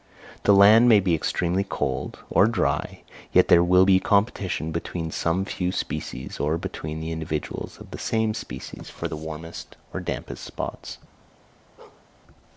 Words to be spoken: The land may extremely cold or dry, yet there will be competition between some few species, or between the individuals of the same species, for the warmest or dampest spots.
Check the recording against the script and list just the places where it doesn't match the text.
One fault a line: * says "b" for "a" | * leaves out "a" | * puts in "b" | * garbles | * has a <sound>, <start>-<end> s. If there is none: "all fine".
* puts in "be"
* has a bark, 11.8-12.1 s